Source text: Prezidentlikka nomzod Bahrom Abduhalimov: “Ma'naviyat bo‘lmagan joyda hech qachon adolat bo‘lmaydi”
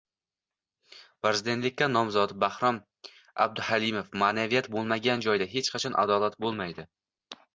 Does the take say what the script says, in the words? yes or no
yes